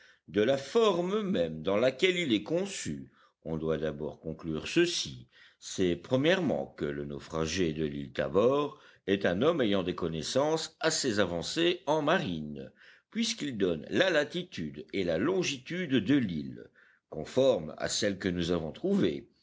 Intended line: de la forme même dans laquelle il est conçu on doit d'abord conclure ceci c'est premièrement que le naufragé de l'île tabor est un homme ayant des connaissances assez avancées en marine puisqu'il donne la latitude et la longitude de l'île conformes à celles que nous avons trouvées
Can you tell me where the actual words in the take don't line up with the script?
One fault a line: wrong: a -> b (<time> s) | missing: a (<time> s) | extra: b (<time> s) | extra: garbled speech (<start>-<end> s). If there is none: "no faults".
no faults